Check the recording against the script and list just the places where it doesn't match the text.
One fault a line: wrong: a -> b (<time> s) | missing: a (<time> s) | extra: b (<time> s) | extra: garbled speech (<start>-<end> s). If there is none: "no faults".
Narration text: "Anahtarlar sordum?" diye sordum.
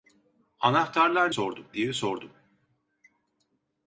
no faults